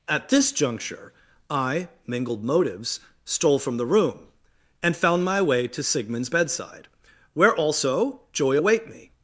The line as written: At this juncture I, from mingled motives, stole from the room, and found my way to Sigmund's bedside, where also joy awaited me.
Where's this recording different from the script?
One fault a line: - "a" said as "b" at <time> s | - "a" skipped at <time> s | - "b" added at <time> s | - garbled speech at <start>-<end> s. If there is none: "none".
- "from" skipped at 1.9 s
- "awaited" said as "await" at 8.5 s